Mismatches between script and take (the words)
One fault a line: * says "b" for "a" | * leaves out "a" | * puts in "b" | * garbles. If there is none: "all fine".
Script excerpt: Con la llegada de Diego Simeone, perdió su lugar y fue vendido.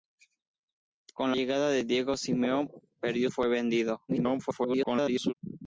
* leaves out "la"
* leaves out "su lugar y"
* garbles